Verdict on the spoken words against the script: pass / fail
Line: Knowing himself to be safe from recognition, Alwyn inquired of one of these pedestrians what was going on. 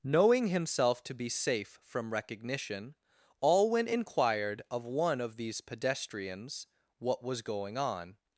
pass